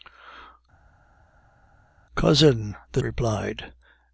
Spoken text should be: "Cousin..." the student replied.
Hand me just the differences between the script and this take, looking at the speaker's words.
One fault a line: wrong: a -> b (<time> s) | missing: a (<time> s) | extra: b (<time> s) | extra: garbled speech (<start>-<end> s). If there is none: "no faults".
missing: student (3.0 s)